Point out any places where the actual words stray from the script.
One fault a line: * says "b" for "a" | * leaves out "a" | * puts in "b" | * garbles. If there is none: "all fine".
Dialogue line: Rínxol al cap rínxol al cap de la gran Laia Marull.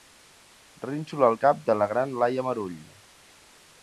* leaves out "rínxol al cap"